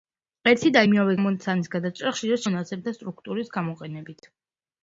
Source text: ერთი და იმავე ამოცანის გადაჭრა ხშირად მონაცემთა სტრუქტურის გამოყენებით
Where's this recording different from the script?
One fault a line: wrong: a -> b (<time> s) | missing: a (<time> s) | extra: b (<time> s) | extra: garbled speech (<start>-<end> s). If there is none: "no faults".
no faults